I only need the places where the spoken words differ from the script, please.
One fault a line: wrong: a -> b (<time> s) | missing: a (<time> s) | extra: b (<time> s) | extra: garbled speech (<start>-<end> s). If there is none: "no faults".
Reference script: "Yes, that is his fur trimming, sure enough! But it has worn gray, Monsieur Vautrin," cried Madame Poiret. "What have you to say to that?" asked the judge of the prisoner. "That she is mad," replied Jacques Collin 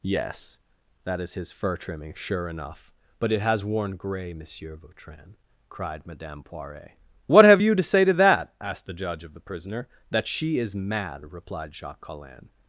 no faults